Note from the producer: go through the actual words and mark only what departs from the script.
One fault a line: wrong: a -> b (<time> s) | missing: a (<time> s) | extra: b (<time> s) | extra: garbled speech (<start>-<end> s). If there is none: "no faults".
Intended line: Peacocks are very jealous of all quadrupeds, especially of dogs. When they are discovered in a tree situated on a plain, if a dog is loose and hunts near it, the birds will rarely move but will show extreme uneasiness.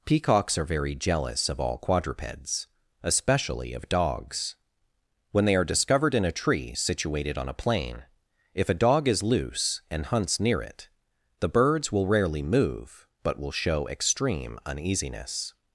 no faults